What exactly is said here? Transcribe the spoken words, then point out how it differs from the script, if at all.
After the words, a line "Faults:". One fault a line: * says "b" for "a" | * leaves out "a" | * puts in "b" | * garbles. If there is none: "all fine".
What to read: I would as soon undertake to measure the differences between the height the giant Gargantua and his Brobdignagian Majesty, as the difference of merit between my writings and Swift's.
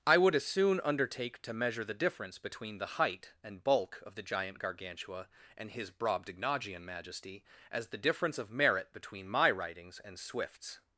I would as soon undertake to measure the difference between the height and bulk of the giant Gargantua and his Brobdignagian Majesty, as the difference of merit between my writings and Swift's.
Faults:
* says "difference" for "differences"
* puts in "and bulk of"